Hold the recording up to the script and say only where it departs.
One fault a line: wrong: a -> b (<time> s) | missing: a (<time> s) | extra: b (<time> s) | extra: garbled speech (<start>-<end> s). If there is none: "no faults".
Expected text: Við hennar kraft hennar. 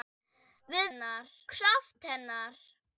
no faults